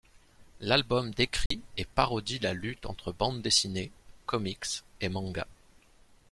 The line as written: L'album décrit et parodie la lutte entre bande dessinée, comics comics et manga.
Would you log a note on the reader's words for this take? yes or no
yes